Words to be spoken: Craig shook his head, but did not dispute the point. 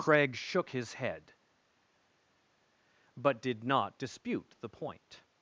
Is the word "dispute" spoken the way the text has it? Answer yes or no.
yes